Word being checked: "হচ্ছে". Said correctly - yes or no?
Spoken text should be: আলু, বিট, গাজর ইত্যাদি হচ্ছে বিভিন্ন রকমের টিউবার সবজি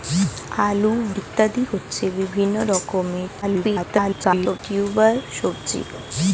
yes